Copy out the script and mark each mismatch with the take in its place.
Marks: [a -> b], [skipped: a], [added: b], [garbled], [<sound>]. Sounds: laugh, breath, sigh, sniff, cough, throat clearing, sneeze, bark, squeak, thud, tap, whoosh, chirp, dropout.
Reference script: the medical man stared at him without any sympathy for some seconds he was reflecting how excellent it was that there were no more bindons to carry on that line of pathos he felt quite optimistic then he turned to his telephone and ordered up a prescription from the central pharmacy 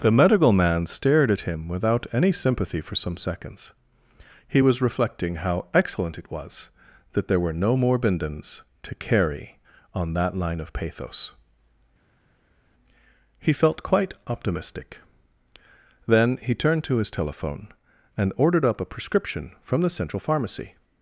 the medical man stared at him without any sympathy for some seconds he was reflecting how excellent it was that there were no more bindons to carry on that line of pathos he felt quite optimistic then he turned to his telephone and ordered up a prescription from the central pharmacy